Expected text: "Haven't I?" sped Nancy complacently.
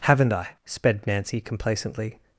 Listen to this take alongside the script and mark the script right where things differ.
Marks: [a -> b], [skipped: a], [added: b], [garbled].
"Haven't I?" sped Nancy complacently.